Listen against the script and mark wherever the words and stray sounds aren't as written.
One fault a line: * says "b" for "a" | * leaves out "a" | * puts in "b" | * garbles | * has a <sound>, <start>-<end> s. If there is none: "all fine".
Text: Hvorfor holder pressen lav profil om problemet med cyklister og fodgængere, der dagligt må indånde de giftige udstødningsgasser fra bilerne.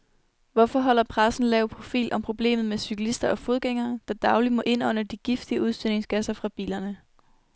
all fine